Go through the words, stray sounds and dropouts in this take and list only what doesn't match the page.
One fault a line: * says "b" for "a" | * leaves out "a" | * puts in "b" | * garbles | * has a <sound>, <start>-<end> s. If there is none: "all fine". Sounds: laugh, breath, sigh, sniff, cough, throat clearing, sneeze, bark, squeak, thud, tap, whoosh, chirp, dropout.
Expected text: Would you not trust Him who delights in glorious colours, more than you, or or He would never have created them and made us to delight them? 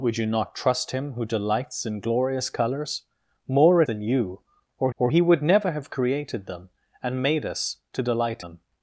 all fine